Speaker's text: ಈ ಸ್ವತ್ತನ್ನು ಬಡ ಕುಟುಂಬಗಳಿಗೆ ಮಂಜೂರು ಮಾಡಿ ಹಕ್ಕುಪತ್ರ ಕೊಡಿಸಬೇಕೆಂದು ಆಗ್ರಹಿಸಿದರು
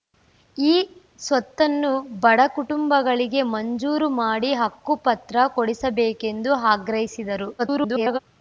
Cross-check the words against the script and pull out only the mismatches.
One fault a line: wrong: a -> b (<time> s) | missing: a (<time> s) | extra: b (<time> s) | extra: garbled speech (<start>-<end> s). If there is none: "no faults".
extra: garbled speech (7.6-8.2 s)